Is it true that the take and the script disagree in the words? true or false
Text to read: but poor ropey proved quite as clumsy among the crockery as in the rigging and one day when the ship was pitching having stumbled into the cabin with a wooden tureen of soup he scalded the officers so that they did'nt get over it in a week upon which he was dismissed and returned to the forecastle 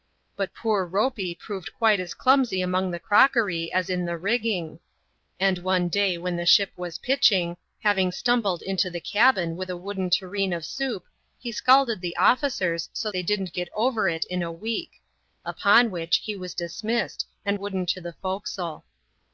true